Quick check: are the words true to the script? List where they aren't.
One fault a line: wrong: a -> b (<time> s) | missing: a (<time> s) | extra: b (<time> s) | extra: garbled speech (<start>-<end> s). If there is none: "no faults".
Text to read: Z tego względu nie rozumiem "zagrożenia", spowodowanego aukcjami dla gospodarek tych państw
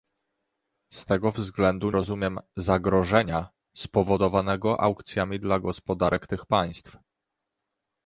missing: nie (1.9 s)